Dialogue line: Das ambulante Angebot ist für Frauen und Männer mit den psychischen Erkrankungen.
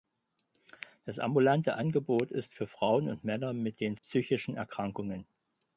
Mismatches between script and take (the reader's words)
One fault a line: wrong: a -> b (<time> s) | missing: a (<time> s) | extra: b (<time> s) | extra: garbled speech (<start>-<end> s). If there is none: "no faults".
no faults